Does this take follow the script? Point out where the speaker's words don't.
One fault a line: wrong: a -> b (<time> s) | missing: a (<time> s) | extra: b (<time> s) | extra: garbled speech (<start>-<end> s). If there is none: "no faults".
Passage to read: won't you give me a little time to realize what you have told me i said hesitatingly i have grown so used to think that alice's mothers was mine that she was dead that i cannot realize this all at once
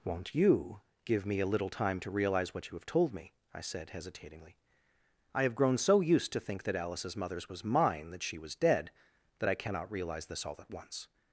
no faults